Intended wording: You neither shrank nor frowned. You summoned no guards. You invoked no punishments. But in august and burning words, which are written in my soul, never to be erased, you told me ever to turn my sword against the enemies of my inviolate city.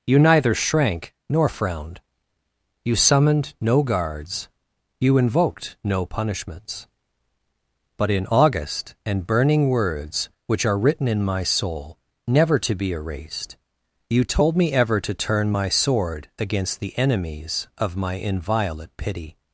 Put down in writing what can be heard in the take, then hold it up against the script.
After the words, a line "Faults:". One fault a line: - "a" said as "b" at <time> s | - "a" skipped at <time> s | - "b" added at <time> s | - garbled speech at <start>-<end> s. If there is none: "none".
You neither shrank nor frowned. You summoned no guards. You invoked no punishments. But in august and burning words, which are written in my soul, never to be erased, you told me ever to turn my sword against the enemies of my inviolate pity.
Faults:
- "city" said as "pity" at 19.0 s